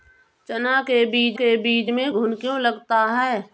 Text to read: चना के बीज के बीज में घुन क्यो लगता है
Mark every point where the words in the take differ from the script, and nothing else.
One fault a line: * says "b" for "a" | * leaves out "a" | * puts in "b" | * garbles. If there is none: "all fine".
all fine